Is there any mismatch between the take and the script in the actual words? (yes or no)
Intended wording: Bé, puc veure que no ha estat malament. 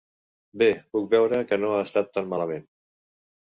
yes